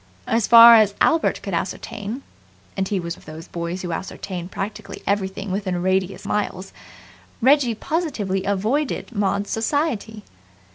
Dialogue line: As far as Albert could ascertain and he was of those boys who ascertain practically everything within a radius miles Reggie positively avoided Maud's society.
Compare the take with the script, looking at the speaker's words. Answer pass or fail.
pass